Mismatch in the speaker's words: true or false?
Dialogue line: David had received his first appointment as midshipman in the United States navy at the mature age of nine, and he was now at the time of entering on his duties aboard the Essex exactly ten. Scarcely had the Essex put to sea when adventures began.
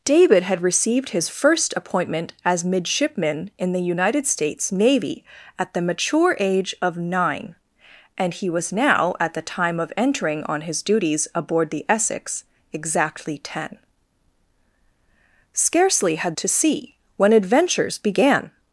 true